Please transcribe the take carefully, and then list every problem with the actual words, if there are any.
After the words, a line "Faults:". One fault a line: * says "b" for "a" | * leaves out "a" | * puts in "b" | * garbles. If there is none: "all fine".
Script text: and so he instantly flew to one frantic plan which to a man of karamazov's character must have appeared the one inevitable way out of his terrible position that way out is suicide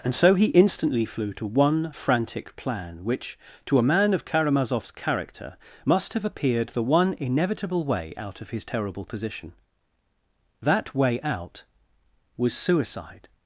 and so he instantly flew to one frantic plan which to a man of karamazov's character must have appeared the one inevitable way out of his terrible position that way out was suicide
Faults:
* says "was" for "is"